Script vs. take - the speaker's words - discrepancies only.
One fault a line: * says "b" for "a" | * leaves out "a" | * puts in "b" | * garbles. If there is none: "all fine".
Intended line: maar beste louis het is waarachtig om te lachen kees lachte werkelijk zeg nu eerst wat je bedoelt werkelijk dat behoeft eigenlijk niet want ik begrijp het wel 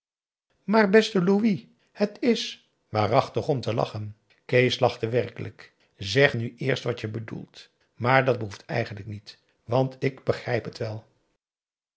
* says "maar" for "werkelijk"